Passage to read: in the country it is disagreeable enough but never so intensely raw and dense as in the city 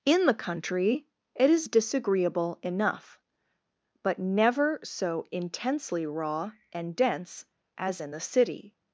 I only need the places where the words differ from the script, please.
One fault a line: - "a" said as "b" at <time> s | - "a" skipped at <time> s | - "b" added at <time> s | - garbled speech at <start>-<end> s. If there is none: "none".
none